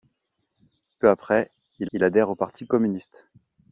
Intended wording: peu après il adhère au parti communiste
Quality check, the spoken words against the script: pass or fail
fail